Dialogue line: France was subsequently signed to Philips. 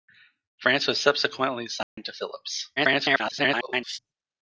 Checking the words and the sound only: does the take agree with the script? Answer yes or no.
no